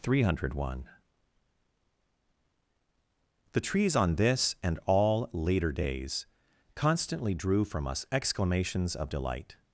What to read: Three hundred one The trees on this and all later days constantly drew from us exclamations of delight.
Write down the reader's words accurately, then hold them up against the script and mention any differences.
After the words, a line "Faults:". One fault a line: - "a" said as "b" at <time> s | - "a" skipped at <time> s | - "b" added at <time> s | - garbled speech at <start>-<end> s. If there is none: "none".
Three hundred one The trees on this and all later days constantly drew from us exclamations of delight.
Faults:
none